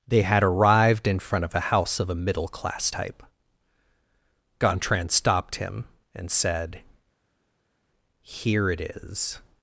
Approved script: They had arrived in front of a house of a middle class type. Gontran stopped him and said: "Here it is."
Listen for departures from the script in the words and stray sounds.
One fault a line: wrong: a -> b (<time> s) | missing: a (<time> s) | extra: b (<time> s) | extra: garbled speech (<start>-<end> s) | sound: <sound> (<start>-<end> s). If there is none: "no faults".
no faults